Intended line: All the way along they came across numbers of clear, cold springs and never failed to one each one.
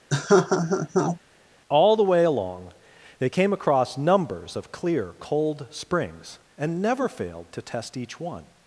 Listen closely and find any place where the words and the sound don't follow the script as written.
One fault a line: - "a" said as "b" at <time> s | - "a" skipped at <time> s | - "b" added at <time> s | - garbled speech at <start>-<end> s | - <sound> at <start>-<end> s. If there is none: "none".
- laugh at 0.1-1.2 s
- "one" said as "test" at 7.6 s